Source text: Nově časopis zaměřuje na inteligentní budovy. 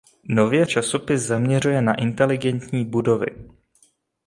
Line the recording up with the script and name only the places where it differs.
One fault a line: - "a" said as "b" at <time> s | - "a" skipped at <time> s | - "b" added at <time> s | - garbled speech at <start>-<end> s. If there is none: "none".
none